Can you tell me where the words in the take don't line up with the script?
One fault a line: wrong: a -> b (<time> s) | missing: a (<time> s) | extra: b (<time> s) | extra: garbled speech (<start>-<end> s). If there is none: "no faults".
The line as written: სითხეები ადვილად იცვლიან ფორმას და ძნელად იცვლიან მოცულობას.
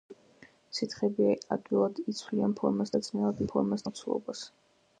wrong: იცვლიან -> ფორმას (3.5 s)